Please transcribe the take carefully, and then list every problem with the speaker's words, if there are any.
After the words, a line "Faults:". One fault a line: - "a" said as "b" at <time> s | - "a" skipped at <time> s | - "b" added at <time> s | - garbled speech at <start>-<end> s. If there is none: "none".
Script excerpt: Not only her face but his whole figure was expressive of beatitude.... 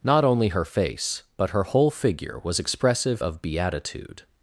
Not only her face but her whole figure was expressive of beatitude....
Faults:
- "his" said as "her" at 1.5 s